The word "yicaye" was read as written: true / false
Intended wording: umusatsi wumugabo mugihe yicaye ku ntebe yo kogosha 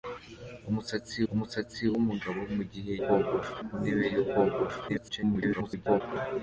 false